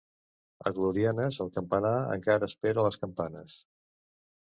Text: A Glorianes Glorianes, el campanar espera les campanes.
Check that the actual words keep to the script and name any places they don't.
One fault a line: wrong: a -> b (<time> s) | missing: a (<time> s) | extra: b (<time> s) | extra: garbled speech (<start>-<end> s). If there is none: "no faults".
missing: Glorianes (1.4 s)
extra: encara (2.2 s)